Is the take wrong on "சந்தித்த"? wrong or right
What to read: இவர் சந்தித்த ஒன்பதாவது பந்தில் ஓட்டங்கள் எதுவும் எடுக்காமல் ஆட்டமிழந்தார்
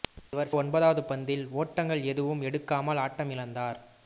wrong